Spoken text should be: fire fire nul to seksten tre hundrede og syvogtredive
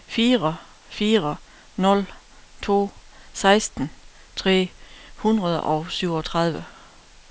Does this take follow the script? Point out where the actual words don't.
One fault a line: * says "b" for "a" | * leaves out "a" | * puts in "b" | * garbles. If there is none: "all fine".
all fine